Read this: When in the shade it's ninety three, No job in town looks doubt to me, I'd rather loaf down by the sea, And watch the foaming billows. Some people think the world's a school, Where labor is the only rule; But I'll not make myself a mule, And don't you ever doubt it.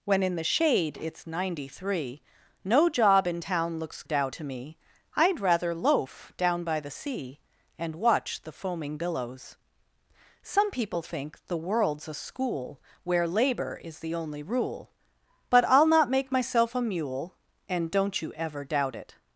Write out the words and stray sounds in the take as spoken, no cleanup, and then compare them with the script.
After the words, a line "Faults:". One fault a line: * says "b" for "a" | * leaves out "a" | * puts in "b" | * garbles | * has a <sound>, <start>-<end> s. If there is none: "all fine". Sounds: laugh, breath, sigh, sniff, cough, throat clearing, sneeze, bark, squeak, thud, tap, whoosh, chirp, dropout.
When in the shade it's ninety three, No job in town looks doubt to me, I'd rather loaf down by the sea, And watch the foaming billows. Some people think the world's a school, Where labor is the only rule; But I'll not make myself a mule, And don't you ever doubt it.
Faults:
all fine